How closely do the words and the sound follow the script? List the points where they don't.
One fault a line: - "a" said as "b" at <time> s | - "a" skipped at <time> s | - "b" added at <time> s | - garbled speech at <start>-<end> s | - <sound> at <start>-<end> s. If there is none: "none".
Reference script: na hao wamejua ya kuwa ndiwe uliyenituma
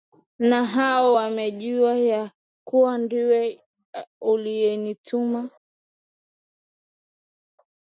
none